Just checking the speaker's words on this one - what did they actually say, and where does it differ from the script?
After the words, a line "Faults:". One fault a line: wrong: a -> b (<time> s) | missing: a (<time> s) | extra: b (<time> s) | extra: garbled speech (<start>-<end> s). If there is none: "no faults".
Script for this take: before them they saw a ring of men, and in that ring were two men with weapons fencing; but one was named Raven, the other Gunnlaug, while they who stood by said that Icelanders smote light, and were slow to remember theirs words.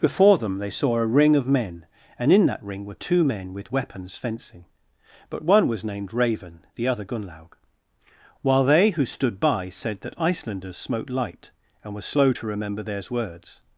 before them they saw a ring of men, and in that ring were two men with weapons fencing; but one was named Raven, the other Gunnlaug, while they who stood by said that Icelanders smote light, and were slow to remember theirs words.
Faults:
no faults